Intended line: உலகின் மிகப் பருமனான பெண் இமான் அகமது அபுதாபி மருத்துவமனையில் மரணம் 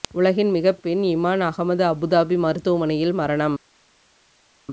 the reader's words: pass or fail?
fail